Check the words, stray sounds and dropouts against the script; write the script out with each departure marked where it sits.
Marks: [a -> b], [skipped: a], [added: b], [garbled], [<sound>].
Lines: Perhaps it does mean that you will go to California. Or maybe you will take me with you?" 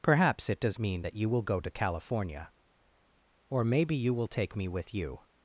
Perhaps it does mean that you will go to California. Or maybe you will take me with you?"